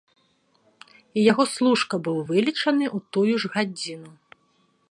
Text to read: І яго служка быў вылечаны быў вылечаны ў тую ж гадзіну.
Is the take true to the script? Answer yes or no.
no